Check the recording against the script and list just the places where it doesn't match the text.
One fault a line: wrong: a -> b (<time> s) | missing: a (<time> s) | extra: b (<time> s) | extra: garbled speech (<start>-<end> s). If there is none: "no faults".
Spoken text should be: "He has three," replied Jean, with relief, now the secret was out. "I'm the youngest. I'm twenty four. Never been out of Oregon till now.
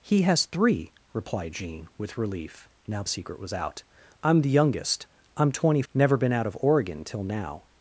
missing: the (3.0 s)
missing: four (5.8 s)